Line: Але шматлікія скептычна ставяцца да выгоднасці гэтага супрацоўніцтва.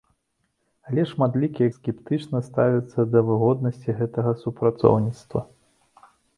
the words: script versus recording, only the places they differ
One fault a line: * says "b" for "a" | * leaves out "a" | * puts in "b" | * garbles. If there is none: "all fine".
all fine